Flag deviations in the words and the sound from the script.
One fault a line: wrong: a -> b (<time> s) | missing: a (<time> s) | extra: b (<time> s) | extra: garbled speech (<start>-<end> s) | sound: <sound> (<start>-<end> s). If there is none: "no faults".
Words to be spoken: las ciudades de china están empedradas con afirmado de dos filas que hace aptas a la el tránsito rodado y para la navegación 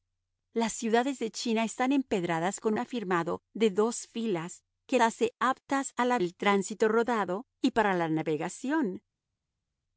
no faults